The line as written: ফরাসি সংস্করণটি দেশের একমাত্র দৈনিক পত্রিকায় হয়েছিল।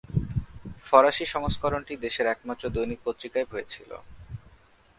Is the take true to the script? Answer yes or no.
yes